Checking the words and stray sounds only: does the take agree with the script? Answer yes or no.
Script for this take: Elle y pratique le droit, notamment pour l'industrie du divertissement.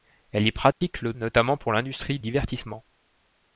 no